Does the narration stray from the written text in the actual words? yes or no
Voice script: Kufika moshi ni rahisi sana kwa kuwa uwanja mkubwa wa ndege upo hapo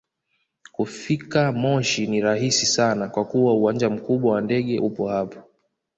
no